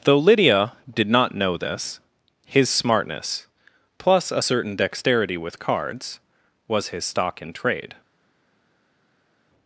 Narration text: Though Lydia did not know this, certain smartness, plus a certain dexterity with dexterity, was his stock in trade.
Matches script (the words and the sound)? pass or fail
fail